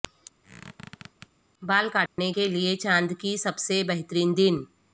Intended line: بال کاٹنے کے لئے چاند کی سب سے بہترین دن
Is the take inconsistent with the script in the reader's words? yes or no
no